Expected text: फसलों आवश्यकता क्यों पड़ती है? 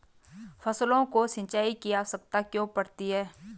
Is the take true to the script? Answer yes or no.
no